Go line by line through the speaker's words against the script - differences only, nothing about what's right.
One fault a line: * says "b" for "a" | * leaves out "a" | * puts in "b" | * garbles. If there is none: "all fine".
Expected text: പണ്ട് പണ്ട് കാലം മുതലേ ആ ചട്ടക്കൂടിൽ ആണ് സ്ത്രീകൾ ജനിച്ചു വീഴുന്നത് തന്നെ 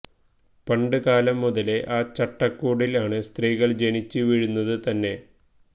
* leaves out "പണ്ട്"